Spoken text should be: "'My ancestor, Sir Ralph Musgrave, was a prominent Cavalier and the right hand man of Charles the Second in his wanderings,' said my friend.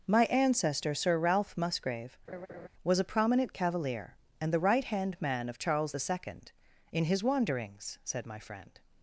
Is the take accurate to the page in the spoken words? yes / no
yes